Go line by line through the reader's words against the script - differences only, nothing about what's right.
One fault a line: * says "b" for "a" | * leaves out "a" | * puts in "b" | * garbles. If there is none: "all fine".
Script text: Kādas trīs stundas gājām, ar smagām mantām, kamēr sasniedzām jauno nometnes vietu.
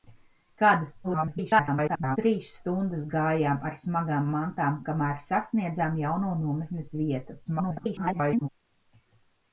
* garbles
* garbles